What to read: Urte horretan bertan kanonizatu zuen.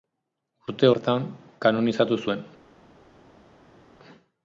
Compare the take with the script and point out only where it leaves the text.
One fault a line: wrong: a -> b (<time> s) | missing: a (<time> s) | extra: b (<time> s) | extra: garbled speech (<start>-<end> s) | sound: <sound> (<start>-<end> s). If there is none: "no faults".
missing: horretan (0.9 s)